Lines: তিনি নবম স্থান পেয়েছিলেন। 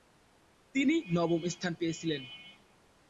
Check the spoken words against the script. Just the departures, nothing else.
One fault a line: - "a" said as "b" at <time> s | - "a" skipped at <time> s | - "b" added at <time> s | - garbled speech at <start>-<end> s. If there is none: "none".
none